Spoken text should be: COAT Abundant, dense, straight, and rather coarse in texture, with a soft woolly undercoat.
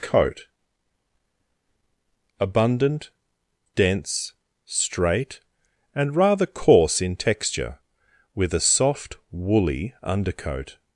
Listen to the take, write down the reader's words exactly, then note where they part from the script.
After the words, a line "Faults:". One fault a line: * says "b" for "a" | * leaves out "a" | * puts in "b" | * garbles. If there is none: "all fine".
COAT Abundant, dense, straight, and rather coarse in texture, with a soft woolly undercoat.
Faults:
all fine